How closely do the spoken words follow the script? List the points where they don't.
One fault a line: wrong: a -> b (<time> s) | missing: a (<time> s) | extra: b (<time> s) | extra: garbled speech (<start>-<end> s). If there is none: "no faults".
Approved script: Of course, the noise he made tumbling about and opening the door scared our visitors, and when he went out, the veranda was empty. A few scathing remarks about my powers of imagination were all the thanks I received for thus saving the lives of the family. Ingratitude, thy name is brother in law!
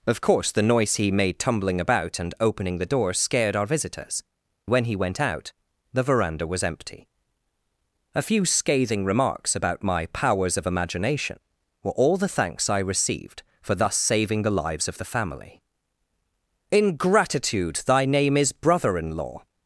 missing: and (4.2 s)